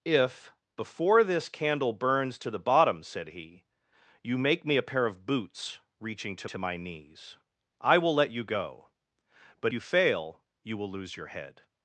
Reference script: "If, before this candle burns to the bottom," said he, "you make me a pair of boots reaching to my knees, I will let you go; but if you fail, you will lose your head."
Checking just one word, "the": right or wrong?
right